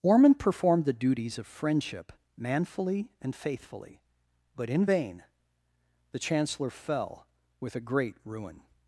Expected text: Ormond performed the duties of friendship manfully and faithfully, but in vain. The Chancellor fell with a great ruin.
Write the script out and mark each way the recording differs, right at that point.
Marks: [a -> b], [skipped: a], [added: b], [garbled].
Ormond performed the duties of friendship manfully and faithfully, but in vain. The Chancellor fell with a great ruin.